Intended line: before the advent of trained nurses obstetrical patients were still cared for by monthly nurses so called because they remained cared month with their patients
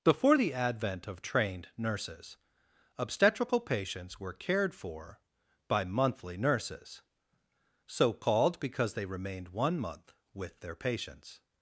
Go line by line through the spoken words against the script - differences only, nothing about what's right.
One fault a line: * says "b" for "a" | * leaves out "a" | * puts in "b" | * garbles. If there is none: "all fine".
* leaves out "still"
* says "one" for "cared"